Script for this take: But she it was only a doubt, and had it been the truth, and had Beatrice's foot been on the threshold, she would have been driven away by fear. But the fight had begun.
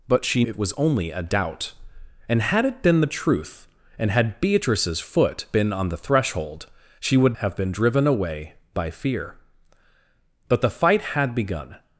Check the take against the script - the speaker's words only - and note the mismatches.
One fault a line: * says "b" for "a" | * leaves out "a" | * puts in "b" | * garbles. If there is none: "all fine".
all fine